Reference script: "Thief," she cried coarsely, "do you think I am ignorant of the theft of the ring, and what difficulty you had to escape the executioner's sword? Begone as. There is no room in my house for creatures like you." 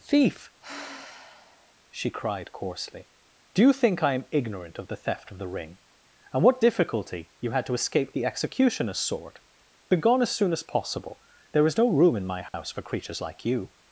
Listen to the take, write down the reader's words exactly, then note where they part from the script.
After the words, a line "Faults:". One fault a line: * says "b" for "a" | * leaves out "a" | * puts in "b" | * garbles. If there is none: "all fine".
"Thief," she cried coarsely, "do you think I am ignorant of the theft of the ring, and what difficulty you had to escape the executioner's sword? Begone as soon as possible. There is no room in my house for creatures like you."
Faults:
* puts in "soon as possible"